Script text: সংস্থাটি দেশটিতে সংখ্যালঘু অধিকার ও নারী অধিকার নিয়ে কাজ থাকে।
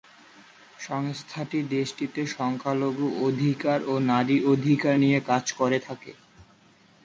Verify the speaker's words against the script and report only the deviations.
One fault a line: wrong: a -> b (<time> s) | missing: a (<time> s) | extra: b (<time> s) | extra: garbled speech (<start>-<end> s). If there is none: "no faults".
extra: করে (5.5 s)